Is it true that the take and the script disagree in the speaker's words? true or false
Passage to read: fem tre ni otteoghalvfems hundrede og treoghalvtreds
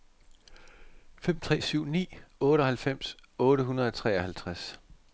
true